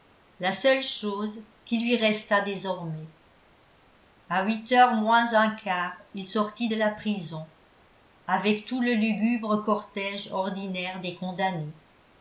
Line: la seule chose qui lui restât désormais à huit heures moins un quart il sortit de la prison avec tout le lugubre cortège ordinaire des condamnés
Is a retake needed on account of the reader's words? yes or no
no